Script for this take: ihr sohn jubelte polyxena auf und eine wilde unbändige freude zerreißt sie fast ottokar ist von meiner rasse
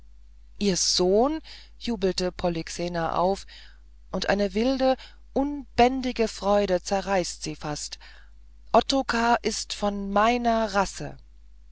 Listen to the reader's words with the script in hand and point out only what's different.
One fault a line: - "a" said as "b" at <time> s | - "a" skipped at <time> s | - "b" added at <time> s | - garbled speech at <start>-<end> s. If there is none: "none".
none